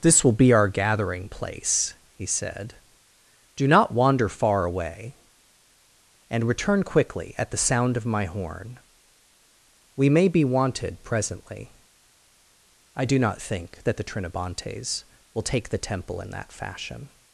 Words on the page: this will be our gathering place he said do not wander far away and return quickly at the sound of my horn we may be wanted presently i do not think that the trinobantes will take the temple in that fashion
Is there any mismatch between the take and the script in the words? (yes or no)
no